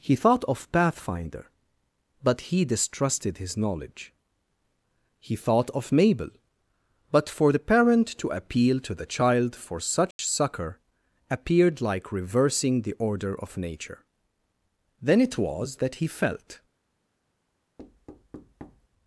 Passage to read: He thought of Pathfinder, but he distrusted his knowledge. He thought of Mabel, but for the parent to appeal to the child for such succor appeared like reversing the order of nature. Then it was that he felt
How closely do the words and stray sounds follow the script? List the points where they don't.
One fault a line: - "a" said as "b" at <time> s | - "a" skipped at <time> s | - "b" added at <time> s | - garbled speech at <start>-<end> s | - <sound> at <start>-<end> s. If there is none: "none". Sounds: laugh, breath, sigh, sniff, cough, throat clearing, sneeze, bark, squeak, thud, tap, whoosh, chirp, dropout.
- dropout at 10.1-10.2 s
- thud at 17.8-18.9 s